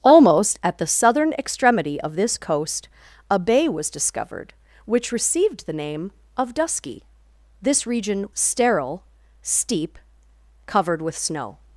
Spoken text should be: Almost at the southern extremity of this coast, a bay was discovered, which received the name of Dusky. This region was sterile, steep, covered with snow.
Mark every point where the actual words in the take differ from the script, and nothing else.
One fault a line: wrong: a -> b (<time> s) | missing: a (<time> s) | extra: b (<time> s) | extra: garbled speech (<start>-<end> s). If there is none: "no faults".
missing: was (8.3 s)